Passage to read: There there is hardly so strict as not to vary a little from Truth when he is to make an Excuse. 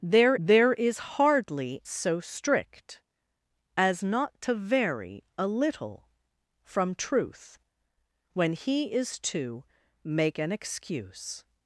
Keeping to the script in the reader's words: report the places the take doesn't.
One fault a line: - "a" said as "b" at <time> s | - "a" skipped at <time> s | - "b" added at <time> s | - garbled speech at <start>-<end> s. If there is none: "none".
none